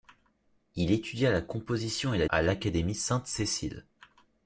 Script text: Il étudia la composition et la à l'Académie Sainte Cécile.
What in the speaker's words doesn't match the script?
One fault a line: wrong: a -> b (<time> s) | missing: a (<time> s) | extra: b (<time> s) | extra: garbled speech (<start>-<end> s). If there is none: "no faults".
no faults